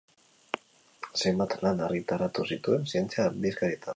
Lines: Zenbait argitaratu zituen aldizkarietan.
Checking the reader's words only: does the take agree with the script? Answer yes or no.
no